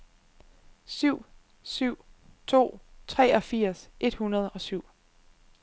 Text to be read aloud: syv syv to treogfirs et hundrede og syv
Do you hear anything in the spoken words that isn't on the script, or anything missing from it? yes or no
no